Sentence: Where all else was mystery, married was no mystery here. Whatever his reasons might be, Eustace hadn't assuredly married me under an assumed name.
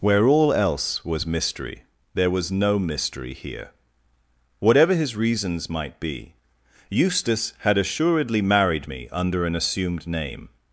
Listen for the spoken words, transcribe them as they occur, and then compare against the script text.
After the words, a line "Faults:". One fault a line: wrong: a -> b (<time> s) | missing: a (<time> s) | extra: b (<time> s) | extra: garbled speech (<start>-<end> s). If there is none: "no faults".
Where all else was mystery, there was no mystery here. Whatever his reasons might be, Eustace had assuredly married me under an assumed name.
Faults:
wrong: married -> there (2.1 s)
wrong: hadn't -> had (7.6 s)